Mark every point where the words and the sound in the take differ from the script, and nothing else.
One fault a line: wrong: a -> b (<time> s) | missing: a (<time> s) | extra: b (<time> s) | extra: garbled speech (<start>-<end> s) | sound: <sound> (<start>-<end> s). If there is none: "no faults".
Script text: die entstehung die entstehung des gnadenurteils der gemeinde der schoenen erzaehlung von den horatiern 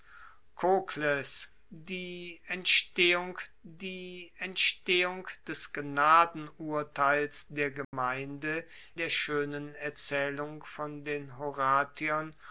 sound: dropout (7.8-7.9 s)